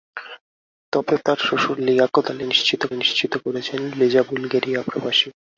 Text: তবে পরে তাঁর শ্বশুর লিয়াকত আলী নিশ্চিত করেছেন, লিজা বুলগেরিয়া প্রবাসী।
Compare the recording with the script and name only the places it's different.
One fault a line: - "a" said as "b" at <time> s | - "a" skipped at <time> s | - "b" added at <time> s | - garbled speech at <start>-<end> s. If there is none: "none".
- "পরে" skipped at 1.1 s
- "নিশ্চিত" added at 2.9 s